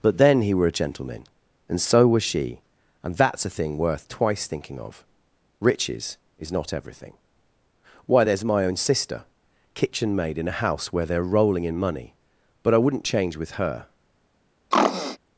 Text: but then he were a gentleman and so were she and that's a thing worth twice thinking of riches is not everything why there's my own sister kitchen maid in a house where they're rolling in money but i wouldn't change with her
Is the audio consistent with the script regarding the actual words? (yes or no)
no